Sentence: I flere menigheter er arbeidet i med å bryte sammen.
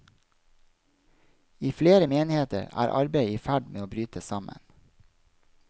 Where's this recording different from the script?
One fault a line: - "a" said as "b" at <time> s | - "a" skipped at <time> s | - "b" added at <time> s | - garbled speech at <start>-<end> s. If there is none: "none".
- "ferd" added at 3.4 s